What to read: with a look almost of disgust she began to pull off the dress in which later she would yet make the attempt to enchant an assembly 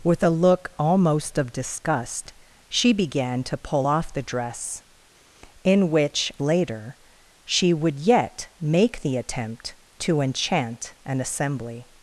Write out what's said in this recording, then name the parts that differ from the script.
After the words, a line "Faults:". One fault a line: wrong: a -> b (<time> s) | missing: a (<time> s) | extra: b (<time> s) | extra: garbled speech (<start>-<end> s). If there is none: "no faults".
with a look almost of disgust she began to pull off the dress in which later she would yet make the attempt to enchant an assembly
Faults:
no faults